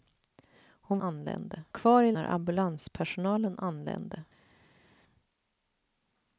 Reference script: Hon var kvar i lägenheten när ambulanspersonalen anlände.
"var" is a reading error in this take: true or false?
true